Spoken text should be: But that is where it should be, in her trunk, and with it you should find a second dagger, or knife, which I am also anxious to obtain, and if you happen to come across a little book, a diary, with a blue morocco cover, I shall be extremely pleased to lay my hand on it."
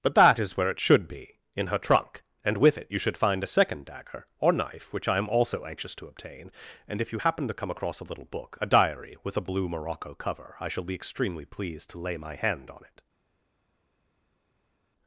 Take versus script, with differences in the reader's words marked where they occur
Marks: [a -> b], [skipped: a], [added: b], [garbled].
But that is where it should be, in her trunk, and with it you should find a second dagger, or knife, which I am also anxious to obtain, and if you happen to come across a little book, a diary, with a blue morocco cover, I shall be extremely pleased to lay my hand on it."